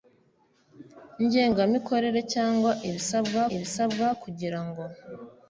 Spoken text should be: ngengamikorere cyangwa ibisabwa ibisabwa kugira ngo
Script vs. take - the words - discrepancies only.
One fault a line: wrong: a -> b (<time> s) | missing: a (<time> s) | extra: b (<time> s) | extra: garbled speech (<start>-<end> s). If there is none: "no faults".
no faults